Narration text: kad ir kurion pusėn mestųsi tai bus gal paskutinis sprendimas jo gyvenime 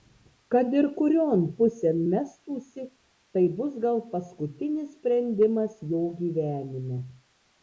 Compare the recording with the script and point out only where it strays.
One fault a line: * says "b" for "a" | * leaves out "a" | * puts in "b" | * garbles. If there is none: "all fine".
all fine